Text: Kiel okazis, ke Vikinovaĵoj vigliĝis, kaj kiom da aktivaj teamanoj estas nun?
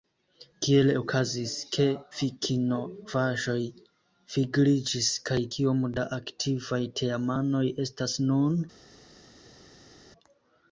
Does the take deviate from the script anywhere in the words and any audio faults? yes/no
no